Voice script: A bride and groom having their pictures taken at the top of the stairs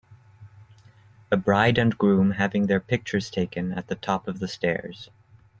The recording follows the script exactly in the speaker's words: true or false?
true